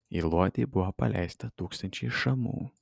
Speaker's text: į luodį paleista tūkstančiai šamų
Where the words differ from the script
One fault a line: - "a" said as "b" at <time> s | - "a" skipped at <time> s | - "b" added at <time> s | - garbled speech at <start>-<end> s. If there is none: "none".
- "buvo" added at 0.7 s